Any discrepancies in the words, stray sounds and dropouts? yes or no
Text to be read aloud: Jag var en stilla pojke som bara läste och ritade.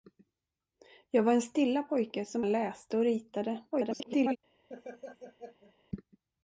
yes